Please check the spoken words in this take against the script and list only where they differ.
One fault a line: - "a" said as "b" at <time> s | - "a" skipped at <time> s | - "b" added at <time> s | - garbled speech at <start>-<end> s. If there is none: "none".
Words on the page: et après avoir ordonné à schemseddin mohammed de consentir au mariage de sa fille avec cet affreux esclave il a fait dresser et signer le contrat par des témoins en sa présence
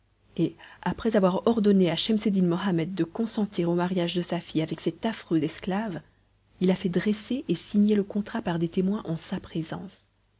none